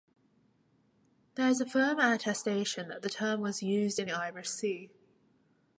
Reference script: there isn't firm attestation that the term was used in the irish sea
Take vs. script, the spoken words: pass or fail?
fail